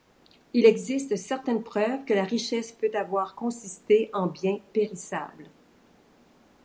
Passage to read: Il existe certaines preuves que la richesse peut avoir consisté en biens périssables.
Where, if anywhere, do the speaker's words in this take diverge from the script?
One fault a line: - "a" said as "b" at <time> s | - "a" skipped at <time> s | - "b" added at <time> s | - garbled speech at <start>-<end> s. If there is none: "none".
none